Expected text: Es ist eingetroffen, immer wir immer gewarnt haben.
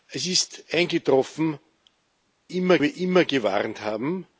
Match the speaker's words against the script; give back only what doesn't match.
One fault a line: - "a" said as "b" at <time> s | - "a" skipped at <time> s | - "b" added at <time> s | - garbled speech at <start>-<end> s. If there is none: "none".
none